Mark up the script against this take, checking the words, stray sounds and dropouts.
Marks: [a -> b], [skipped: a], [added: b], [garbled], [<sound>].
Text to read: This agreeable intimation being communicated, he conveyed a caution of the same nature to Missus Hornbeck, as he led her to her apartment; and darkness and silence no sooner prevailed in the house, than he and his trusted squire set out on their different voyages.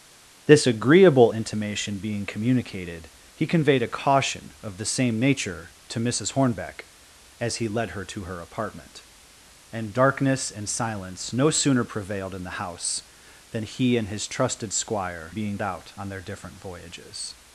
This agreeable intimation being communicated, he conveyed a caution of the same nature to Missus Hornbeck, as he led her to her apartment; and darkness and silence no sooner prevailed in the house, than he and his trusted squire [set -> being] out on their different voyages.